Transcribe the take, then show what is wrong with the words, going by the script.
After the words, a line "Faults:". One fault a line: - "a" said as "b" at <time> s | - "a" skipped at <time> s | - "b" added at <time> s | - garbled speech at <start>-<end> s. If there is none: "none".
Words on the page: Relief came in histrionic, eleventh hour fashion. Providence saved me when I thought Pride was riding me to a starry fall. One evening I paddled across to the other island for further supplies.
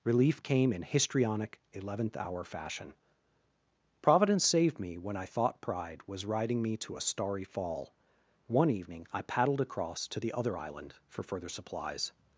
Relief came in histrionic, eleventh hour fashion. Providence saved me when I thought Pride was riding me to a starry fall. One evening I paddled across to the other island for further supplies.
Faults:
none